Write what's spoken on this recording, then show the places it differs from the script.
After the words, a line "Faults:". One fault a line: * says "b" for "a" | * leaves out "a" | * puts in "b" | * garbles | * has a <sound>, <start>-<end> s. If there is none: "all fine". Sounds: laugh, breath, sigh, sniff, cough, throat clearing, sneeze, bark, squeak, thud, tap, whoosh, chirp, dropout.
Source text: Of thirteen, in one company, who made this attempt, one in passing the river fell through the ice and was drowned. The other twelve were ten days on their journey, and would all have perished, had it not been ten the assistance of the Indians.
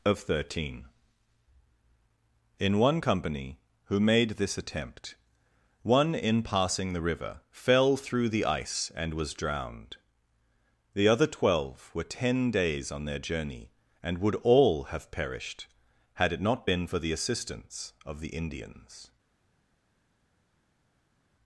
Of thirteen, in one company, who made this attempt, one in passing the river fell through the ice and was drowned. The other twelve were ten days on their journey, and would all have perished, had it not been for the assistance of the Indians.
Faults:
* says "for" for "ten"